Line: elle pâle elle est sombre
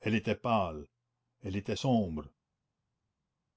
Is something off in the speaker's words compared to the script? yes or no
yes